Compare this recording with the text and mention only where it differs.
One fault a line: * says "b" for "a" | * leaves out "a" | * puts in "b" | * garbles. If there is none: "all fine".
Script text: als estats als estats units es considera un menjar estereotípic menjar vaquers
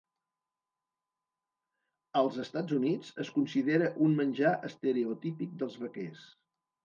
* leaves out "als estats"
* says "dels" for "menjar"